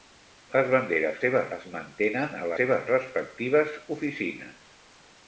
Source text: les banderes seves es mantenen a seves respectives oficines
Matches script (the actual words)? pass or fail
pass